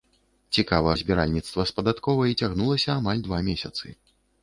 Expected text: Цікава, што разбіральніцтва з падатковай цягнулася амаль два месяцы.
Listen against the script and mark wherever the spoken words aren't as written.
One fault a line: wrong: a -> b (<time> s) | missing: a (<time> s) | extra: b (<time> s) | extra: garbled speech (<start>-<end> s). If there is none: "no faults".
missing: што (0.9 s)